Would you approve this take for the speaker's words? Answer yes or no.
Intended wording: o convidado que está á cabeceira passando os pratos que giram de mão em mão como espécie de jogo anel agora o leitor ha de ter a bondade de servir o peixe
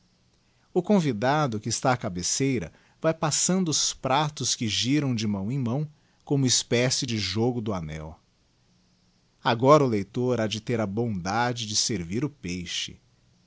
no